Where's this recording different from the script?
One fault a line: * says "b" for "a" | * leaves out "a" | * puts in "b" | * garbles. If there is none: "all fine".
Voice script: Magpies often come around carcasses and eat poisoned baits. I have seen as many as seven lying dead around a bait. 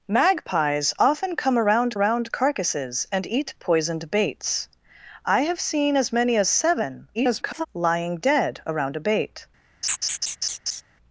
* puts in "around"
* garbles